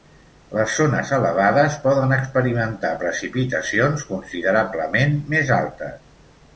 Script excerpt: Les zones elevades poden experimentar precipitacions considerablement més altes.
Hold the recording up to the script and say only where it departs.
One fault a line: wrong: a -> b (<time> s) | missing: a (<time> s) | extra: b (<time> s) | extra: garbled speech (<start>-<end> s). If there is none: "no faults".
no faults